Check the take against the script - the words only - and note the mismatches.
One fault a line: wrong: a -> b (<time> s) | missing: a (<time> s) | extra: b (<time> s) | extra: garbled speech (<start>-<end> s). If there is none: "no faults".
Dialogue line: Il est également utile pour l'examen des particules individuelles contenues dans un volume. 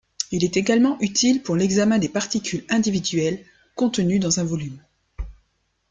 no faults